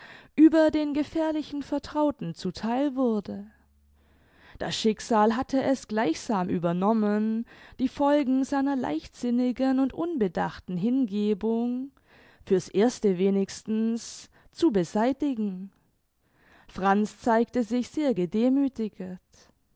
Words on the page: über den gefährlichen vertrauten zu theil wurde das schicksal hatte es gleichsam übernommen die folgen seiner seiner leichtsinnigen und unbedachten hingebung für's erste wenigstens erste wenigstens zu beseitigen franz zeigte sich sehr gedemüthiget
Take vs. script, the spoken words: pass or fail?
fail